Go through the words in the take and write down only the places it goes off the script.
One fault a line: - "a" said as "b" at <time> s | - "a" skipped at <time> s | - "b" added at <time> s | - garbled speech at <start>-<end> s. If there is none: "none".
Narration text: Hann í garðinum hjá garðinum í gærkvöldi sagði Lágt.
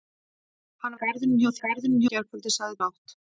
none